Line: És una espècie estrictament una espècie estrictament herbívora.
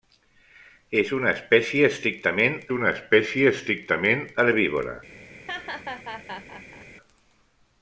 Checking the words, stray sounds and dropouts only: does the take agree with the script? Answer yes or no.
no